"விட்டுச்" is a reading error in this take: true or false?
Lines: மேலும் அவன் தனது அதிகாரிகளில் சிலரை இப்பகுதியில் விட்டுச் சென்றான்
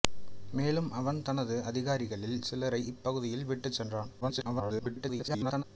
false